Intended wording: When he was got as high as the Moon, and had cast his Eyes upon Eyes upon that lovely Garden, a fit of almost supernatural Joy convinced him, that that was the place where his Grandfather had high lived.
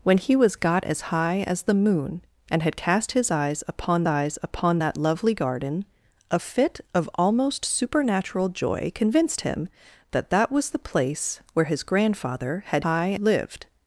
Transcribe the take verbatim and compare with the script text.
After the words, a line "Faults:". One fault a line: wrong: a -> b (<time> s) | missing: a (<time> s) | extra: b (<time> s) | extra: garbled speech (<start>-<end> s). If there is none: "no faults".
When he was got as high as the Moon, and had cast his Eyes upon Eyes upon that lovely Garden, a fit of almost supernatural Joy convinced him, that that was the place where his Grandfather had high lived.
Faults:
no faults